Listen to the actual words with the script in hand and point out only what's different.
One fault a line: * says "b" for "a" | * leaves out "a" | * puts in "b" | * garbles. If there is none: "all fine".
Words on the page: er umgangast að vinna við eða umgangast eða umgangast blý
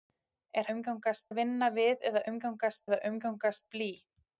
all fine